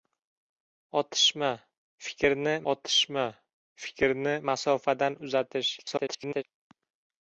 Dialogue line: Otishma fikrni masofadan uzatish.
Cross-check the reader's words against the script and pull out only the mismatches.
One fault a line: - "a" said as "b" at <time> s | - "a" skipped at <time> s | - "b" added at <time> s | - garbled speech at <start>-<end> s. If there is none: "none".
- "otishma fikrni" added at 2.7 s
- garbled speech at 5.8-6.4 s